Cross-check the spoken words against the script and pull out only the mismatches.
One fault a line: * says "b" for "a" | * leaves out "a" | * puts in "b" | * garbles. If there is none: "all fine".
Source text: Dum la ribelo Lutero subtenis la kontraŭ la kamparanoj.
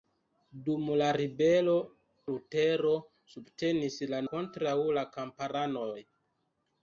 all fine